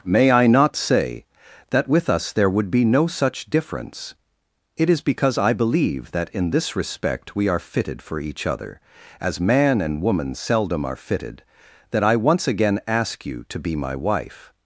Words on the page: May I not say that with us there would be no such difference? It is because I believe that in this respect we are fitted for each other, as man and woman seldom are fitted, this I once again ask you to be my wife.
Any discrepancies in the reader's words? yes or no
yes